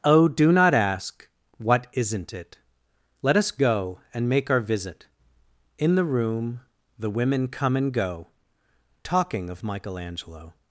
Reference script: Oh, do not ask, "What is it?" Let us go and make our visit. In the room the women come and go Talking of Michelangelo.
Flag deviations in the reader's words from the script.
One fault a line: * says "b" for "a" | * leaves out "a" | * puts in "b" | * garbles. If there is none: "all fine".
* says "isn't" for "is"